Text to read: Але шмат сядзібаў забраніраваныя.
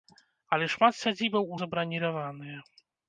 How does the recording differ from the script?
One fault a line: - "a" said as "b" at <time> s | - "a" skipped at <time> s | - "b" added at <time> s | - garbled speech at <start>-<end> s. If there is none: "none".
none